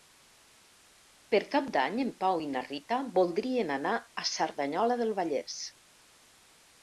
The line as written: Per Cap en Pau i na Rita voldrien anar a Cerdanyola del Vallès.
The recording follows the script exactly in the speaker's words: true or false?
false